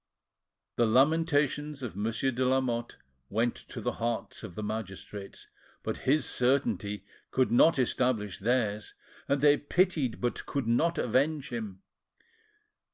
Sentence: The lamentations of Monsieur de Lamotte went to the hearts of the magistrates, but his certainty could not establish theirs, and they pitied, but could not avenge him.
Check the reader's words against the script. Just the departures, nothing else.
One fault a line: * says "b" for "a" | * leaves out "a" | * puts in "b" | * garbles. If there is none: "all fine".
all fine